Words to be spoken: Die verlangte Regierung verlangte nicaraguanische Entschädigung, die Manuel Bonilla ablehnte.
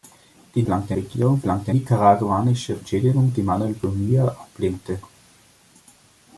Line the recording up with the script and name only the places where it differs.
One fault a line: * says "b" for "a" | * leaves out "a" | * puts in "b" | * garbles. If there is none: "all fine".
all fine